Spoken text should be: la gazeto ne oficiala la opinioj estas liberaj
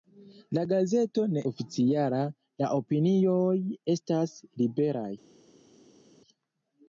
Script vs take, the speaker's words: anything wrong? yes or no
no